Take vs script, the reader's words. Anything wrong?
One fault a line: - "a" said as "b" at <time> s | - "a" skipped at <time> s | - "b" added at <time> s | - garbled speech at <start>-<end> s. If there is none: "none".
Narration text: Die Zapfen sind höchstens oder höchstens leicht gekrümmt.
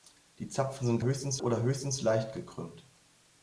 none